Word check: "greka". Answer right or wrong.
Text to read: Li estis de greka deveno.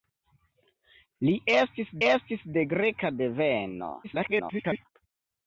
right